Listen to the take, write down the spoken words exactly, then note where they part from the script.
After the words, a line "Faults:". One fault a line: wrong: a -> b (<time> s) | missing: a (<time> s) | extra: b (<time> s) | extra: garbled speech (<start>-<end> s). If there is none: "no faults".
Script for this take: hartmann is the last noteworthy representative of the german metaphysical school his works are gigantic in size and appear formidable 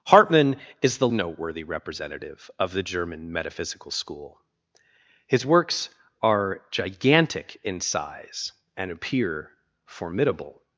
hartmann is the noteworthy representative of the german metaphysical school his works are gigantic in size and appear formidable
Faults:
missing: last (1.1 s)